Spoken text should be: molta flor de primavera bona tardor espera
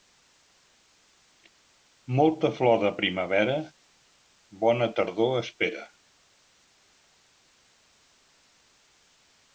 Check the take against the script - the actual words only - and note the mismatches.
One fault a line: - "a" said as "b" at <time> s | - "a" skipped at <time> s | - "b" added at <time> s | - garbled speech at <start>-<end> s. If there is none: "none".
none